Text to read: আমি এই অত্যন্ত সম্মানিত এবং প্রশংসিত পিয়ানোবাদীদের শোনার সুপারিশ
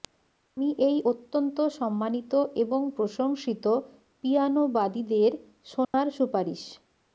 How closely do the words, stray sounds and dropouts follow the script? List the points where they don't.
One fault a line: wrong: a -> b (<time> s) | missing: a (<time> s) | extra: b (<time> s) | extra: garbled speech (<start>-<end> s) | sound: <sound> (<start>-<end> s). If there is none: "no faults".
sound: dropout (5.8-5.9 s)